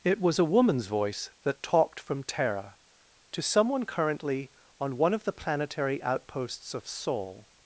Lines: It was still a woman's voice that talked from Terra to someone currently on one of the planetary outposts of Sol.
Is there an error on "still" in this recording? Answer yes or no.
yes